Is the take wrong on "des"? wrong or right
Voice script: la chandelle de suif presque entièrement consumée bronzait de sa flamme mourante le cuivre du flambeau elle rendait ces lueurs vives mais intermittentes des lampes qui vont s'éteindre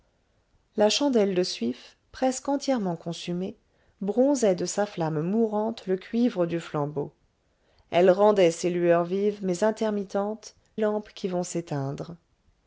wrong